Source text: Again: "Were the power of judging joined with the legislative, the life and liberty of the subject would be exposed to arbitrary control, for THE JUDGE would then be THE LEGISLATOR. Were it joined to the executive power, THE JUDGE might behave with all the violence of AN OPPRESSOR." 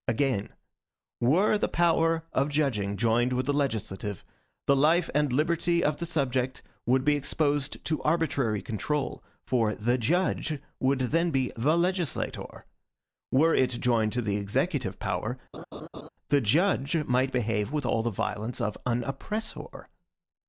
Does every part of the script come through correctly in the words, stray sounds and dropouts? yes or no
no